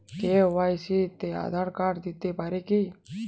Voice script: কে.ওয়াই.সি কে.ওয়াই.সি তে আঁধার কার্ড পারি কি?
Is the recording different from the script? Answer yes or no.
yes